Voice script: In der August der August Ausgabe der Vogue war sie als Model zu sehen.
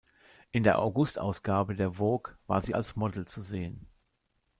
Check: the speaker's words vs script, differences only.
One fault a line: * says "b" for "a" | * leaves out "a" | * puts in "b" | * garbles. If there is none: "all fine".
* leaves out "der August"